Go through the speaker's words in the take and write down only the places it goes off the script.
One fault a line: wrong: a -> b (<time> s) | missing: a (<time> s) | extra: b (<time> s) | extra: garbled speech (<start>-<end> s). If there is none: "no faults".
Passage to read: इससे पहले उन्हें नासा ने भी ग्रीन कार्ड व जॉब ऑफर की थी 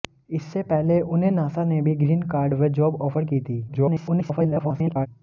extra: garbled speech (3.7-5.1 s)